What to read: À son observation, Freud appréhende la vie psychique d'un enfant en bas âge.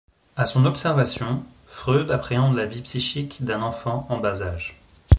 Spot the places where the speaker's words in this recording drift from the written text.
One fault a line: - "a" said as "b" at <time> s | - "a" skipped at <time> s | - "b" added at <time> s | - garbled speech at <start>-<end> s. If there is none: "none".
none